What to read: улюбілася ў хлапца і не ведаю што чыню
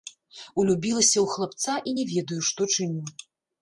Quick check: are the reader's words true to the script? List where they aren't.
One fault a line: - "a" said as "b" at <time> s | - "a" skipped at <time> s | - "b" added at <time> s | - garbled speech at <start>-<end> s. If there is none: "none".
none